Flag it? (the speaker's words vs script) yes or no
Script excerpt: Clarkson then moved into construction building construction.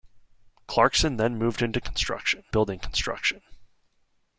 no